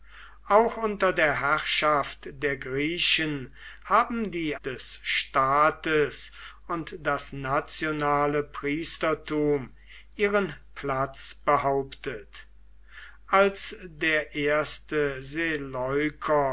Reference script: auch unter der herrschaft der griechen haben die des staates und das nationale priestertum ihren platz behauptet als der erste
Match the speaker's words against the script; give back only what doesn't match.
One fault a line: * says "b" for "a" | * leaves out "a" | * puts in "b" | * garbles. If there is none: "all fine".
all fine